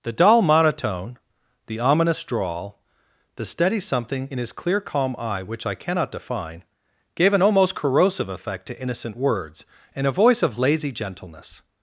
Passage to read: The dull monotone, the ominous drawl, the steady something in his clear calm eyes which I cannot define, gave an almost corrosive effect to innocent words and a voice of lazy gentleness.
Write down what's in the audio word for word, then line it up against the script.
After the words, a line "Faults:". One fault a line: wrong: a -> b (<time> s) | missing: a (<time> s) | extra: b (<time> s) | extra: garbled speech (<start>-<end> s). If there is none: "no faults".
The dull monotone, the ominous drawl, the steady something in his clear calm eye which I cannot define, gave an almost corrosive effect to innocent words and a voice of lazy gentleness.
Faults:
wrong: eyes -> eye (5.2 s)